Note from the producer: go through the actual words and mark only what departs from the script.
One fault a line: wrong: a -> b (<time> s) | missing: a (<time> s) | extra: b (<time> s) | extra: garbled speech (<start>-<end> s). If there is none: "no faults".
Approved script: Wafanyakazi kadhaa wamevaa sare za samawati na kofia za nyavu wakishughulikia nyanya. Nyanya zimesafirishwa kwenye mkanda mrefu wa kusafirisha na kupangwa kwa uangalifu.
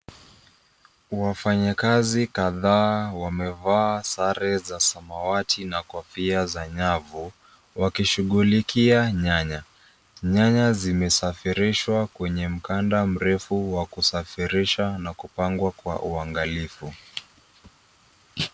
no faults